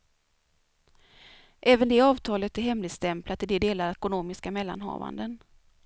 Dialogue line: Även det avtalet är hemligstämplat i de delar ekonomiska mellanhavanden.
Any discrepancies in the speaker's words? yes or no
no